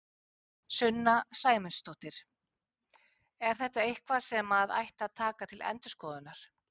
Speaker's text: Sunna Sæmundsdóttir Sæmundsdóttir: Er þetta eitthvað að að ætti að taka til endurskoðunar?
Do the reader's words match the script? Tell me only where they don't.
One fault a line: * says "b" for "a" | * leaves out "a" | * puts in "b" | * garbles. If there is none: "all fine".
* leaves out "Sæmundsdóttir"
* says "sem" for "að"